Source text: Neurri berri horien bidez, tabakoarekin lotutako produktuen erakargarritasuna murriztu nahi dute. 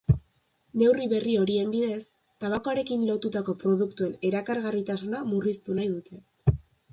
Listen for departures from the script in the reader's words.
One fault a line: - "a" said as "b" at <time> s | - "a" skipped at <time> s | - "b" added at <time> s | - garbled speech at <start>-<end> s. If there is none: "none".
none